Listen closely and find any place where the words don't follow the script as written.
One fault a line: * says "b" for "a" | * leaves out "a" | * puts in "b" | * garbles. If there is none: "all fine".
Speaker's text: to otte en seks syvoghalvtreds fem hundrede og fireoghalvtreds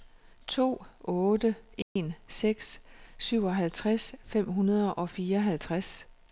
all fine